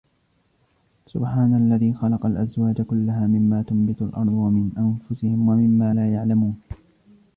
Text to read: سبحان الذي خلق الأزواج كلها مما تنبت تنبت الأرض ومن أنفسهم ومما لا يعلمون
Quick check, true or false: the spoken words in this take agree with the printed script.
false